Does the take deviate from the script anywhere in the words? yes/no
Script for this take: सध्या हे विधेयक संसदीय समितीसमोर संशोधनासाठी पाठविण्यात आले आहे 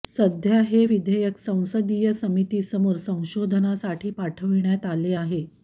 no